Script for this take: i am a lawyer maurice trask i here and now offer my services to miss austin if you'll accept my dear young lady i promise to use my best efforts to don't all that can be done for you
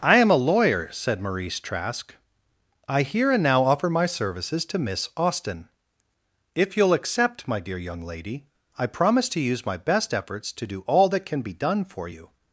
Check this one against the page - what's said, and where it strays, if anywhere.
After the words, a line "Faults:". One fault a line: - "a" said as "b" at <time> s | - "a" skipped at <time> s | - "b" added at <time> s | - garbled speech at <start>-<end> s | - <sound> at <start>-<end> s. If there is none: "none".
i am a lawyer said maurice trask i here and now offer my services to miss austin if you'll accept my dear young lady i promise to use my best efforts to do all that can be done for you
Faults:
- "said" added at 0.9 s
- "don't" said as "do" at 10.7 s